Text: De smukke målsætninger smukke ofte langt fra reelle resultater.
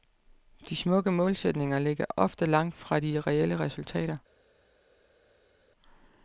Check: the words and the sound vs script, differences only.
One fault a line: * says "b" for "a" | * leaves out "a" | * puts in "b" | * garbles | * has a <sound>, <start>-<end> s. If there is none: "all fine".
* says "ligger" for "smukke"
* puts in "de"